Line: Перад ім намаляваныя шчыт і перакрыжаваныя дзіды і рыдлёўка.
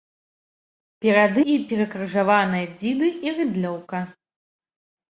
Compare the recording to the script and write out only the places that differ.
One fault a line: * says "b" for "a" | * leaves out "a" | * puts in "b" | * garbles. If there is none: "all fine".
* leaves out "ім намаляваныя шчыт"